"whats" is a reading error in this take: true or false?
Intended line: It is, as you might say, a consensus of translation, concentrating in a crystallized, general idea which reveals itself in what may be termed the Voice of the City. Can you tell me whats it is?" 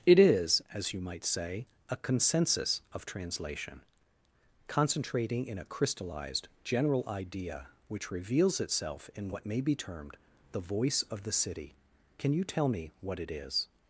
true